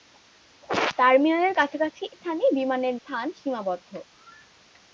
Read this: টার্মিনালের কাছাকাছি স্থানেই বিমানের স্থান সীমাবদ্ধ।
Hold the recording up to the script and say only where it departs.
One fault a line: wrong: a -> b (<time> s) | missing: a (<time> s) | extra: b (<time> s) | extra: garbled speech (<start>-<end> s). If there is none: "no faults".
no faults